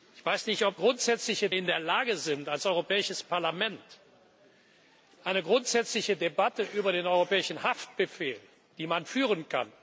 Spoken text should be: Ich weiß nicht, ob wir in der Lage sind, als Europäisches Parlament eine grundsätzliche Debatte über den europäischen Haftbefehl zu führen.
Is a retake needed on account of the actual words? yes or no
yes